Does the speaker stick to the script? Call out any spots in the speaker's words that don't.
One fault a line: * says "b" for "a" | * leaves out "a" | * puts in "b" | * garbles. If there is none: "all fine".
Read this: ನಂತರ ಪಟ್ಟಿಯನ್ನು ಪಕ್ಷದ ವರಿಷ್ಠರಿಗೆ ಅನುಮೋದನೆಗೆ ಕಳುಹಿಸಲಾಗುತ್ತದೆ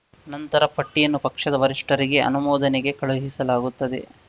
all fine